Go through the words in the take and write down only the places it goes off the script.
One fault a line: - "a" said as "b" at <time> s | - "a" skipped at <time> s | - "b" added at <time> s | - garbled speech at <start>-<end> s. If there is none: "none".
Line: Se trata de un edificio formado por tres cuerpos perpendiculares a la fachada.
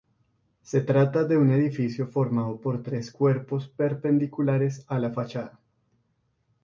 none